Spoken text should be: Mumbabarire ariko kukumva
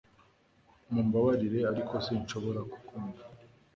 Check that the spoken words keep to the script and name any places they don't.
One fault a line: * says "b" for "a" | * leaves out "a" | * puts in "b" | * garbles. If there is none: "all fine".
* puts in "sinshobora"